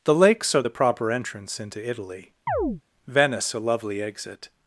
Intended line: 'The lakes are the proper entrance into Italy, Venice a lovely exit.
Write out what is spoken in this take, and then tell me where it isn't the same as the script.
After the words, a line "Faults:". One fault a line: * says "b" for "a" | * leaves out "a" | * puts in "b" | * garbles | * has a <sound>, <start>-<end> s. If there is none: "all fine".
'The lakes are the proper entrance into Italy, Venice a lovely exit.
Faults:
* has a chirp, 2.5-2.8 s